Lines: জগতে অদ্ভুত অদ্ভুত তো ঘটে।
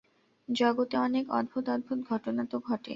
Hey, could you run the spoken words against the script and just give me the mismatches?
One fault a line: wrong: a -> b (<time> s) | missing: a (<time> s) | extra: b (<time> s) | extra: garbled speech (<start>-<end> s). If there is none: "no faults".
extra: অনেক (1.0 s)
extra: ঘটনা (2.1 s)